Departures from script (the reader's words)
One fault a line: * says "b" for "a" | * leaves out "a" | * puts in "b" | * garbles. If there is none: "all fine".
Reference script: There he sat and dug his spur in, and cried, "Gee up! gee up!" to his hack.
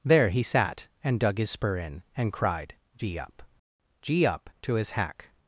all fine